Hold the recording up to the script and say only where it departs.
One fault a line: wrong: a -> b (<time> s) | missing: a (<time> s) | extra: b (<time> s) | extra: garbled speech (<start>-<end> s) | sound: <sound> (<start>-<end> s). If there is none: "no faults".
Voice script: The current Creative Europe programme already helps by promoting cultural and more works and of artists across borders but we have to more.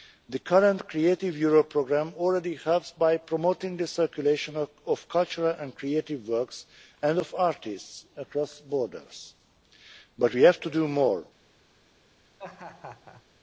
extra: the circulation of (3.7 s)
wrong: more -> creative (5.7 s)
extra: do (10.7 s)
sound: laugh (12.4-13.2 s)